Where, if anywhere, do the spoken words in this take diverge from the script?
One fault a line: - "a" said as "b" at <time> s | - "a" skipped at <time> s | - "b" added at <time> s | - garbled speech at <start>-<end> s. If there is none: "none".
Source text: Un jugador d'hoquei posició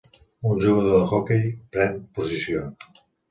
- "pren" added at 1.7 s